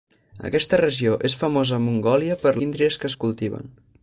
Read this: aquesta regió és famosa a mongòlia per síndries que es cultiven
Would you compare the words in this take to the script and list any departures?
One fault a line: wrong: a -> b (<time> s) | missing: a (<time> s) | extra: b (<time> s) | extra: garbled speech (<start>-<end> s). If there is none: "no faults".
no faults